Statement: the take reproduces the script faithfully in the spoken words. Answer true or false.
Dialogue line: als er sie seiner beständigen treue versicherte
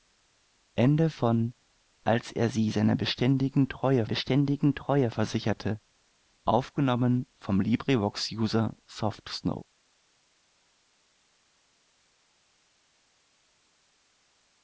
false